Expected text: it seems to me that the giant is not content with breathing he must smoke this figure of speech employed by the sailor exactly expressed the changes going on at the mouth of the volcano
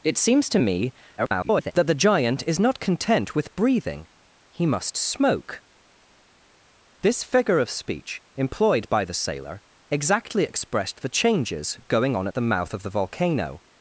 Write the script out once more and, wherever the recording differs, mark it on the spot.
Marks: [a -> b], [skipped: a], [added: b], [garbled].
it seems to me [garbled] that the giant is not content with breathing he must smoke this figure of speech employed by the sailor exactly expressed the changes going on at the mouth of the volcano